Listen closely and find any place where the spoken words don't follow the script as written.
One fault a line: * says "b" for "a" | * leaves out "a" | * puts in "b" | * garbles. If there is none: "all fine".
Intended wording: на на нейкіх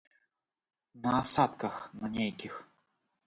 * puts in "асадках"